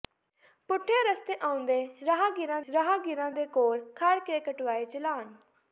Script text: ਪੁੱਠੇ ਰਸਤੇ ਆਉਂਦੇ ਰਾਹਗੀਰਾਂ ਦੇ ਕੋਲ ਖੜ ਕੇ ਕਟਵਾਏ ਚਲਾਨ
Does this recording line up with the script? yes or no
no